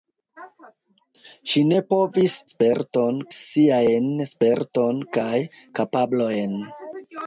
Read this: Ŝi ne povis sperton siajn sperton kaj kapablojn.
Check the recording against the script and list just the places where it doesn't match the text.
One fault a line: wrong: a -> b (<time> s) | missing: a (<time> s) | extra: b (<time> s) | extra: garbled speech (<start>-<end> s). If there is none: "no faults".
no faults